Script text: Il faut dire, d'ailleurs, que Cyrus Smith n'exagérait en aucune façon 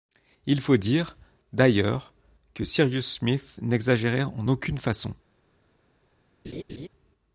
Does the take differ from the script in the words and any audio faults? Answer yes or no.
yes